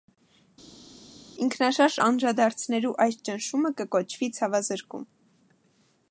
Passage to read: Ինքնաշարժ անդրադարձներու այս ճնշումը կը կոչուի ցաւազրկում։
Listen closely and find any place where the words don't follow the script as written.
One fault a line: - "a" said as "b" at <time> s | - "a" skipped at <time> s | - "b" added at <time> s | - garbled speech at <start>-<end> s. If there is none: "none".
none